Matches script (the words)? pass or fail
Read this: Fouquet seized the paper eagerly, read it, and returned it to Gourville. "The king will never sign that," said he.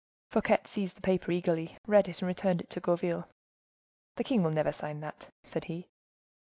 pass